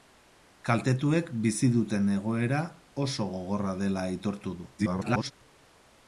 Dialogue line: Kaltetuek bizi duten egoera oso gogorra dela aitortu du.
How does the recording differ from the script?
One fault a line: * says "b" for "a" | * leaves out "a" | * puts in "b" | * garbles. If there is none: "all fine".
* garbles